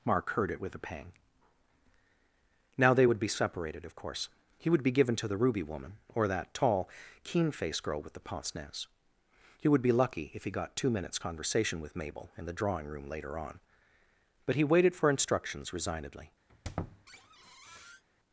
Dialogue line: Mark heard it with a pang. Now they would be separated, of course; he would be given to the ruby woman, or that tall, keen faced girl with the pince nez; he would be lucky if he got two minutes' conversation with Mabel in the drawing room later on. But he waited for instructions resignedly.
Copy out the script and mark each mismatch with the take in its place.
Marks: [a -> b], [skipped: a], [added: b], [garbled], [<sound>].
Mark heard it with a pang. Now they would be separated, of course; he would be given to the ruby woman, or that tall, keen faced girl with the pince nez; he would be lucky if he got two minutes' conversation with Mabel in the drawing room later on. But he waited for instructions resignedly. [squeak]